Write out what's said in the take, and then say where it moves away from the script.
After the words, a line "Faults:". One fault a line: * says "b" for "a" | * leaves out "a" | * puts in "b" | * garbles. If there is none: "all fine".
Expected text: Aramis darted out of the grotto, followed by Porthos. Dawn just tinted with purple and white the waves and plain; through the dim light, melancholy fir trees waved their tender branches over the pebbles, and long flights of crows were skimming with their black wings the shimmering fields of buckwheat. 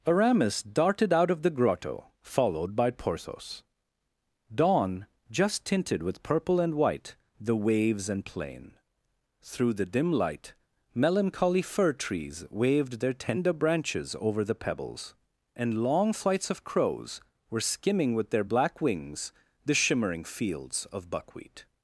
Aramis darted out of the grotto, followed by Porthos. Dawn just tinted with purple and white the waves and plain; through the dim light, melancholy fir trees waved their tender branches over the pebbles, and long flights of crows were skimming with their black wings the shimmering fields of buckwheat.
Faults:
all fine